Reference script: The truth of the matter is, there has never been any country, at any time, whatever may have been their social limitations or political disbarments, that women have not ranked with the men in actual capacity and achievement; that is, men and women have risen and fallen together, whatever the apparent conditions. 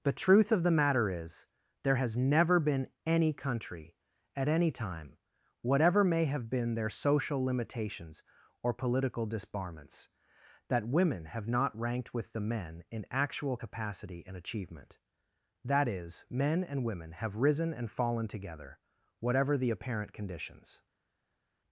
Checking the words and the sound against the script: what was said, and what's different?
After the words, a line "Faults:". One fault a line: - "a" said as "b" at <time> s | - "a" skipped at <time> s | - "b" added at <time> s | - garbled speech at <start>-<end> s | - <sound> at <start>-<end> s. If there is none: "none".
The truth of the matter is, there has never been any country, at any time, whatever may have been their social limitations or political disbarments, that women have not ranked with the men in actual capacity and achievement; that is, men and women have risen and fallen together, whatever the apparent conditions.
Faults:
none